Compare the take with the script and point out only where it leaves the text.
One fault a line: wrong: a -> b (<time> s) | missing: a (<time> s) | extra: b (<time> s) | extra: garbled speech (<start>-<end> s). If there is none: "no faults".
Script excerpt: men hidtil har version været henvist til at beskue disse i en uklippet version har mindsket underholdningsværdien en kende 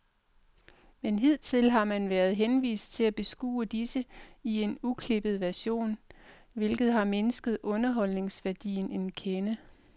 wrong: version -> man (1.9 s)
extra: hvilket (6.5 s)